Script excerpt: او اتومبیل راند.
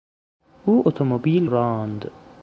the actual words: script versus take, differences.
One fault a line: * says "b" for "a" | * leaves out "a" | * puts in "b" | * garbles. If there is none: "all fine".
all fine